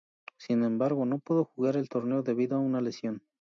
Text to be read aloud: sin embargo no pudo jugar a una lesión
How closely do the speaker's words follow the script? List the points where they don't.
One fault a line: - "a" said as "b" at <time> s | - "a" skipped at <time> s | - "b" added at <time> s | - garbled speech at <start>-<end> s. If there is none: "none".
- "el torneo debido" added at 1.8 s